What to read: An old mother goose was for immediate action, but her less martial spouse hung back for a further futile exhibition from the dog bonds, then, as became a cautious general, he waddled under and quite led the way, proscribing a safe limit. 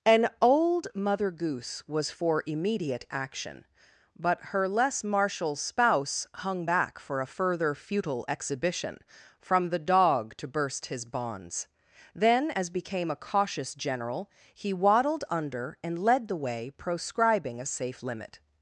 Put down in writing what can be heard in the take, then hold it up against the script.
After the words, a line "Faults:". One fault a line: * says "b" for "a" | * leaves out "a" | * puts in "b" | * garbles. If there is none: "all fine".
An old mother goose was for immediate action, but her less martial spouse hung back for a further futile exhibition from the dog to burst his bonds, then, as became a cautious general, he waddled under and led the way, proscribing a safe limit.
Faults:
* puts in "to burst his"
* leaves out "quite"